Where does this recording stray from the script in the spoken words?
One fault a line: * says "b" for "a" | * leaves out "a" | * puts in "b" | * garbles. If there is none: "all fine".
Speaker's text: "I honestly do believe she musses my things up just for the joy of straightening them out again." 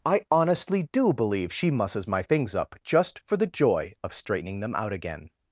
all fine